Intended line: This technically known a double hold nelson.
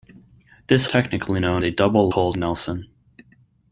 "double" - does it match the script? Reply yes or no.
yes